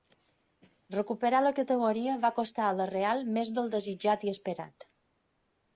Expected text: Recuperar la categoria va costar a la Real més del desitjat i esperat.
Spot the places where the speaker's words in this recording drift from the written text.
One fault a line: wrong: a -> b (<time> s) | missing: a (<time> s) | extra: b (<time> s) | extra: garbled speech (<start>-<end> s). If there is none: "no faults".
no faults